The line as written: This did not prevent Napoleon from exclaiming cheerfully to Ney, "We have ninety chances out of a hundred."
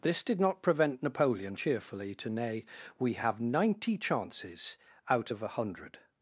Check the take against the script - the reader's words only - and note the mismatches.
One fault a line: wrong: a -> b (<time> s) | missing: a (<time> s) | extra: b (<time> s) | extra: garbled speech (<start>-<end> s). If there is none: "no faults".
missing: from exclaiming (1.6 s)